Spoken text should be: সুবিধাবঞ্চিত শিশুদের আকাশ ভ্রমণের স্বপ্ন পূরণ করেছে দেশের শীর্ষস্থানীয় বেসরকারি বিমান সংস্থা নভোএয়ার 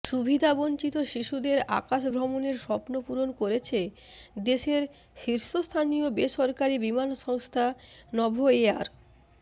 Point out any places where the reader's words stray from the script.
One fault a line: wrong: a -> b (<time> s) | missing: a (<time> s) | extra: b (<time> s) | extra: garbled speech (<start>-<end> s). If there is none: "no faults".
no faults